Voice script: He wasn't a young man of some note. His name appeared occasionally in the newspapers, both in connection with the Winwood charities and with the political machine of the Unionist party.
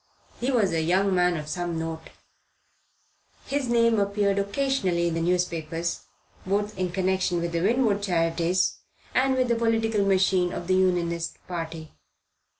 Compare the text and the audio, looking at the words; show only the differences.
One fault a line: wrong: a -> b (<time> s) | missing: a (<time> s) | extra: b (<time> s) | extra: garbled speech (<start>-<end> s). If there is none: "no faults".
wrong: wasn't -> was (0.5 s)